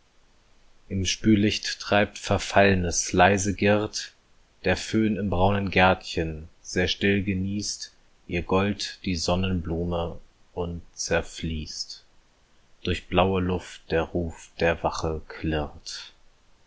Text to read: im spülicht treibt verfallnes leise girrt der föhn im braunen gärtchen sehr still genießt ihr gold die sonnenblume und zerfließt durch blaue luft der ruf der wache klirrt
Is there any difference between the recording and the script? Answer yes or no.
no